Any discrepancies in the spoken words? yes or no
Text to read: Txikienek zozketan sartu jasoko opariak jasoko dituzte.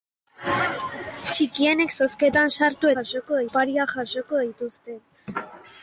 no